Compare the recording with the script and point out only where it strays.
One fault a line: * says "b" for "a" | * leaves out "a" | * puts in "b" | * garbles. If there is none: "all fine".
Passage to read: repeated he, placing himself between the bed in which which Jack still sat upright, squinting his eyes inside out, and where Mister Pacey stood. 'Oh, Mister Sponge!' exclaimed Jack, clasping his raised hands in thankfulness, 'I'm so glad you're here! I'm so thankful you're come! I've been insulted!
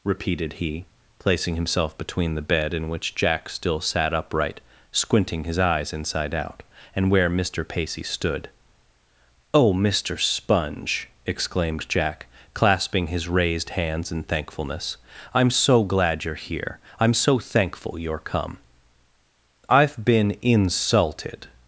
* leaves out "which"